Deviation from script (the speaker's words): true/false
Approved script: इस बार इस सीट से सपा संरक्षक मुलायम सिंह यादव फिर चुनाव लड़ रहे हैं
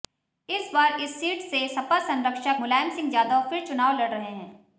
false